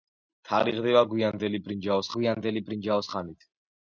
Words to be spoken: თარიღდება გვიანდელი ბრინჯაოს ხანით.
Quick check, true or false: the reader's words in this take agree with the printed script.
false